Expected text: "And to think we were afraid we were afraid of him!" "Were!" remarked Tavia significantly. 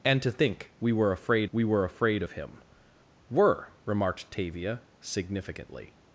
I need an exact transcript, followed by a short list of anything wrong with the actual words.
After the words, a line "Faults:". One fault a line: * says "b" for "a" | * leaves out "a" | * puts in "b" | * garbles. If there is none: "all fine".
"And to think we were afraid we were afraid of him!" "Were!" remarked Tavia significantly.
Faults:
all fine